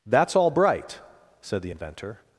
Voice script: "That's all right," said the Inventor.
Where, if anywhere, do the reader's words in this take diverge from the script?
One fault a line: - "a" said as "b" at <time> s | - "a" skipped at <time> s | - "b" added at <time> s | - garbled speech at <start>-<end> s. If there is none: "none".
- "right" said as "bright" at 0.5 s